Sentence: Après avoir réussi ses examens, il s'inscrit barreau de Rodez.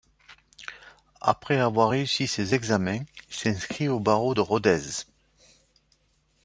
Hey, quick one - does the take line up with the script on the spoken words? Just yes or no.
no